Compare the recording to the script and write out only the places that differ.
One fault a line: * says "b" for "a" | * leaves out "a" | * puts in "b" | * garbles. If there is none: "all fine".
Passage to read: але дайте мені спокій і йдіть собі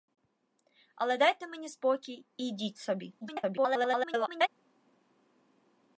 * garbles